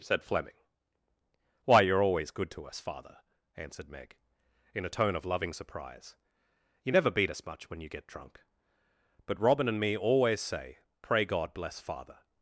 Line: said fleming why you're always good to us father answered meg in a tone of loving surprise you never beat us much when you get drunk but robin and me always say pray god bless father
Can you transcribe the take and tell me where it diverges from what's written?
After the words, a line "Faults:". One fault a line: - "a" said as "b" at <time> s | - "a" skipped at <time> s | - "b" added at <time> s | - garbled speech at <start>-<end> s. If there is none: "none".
said fleming why you're always good to us father answered meg in a tone of loving surprise you never beat us much when you get drunk but robin and me always say pray god bless father
Faults:
none